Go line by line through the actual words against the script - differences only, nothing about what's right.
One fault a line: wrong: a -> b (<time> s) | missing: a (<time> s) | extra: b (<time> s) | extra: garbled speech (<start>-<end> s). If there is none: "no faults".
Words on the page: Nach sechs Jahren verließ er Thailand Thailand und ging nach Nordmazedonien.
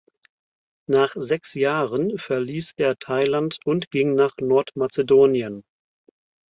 missing: Thailand (3.6 s)